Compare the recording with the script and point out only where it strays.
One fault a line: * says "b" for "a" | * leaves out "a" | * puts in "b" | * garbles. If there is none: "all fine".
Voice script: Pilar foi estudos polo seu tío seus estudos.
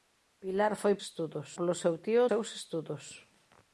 all fine